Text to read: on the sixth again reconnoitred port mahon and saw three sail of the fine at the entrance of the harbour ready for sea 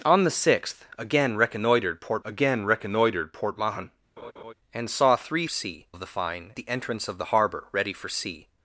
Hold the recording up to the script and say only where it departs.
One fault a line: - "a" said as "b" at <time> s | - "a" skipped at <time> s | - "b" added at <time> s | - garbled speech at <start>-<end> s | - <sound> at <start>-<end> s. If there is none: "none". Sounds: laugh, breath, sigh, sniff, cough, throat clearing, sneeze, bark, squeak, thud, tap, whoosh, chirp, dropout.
- "again reconnoitred port" added at 2.2 s
- laugh at 4.2-4.5 s
- "sail" said as "sea" at 5.5 s
- "at" skipped at 6.5 s